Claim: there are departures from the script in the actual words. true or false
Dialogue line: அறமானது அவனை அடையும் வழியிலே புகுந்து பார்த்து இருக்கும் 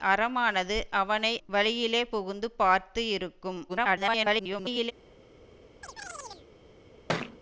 true